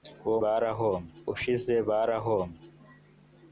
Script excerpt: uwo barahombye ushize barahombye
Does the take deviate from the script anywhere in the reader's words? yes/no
no